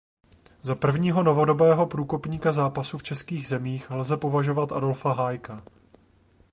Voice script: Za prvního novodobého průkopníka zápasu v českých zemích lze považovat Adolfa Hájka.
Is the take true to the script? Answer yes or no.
yes